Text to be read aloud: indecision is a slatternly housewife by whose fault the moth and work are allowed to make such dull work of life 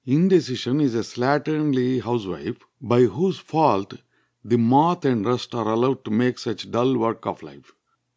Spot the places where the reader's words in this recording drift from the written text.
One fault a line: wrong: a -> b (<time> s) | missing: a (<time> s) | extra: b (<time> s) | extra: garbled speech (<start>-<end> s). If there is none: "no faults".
wrong: work -> rust (5.3 s)